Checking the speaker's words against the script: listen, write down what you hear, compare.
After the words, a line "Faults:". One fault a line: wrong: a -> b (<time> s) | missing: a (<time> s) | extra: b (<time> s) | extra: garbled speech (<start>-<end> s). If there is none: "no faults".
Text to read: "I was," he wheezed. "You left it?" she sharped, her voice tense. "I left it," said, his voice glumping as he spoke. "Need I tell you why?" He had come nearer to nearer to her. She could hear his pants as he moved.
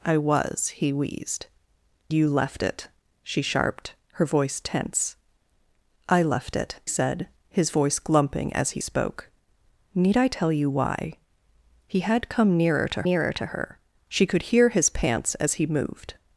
"I was," he wheezed. "You left it?" she sharped, her voice tense. "I left it," said, his voice glumping as he spoke. "Need I tell you why?" He had come nearer to nearer to her. She could hear his pants as he moved.
Faults:
no faults